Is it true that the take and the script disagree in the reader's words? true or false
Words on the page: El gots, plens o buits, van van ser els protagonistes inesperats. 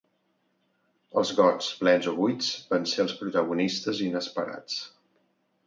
true